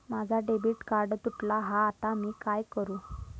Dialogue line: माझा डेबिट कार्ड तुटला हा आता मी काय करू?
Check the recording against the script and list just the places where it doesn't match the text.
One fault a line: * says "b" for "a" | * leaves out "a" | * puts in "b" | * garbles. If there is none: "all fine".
all fine